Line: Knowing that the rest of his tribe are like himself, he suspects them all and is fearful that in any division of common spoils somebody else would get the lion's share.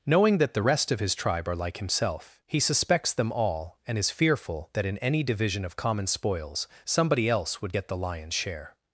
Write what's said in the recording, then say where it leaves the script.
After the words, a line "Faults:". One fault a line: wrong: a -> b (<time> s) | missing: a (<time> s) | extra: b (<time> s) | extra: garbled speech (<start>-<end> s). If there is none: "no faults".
Knowing that the rest of his tribe are like himself, he suspects them all and is fearful that in any division of common spoils somebody else would get the lion's share.
Faults:
no faults